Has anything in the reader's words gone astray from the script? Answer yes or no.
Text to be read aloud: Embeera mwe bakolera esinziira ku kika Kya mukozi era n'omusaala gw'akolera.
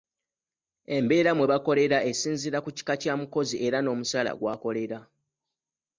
no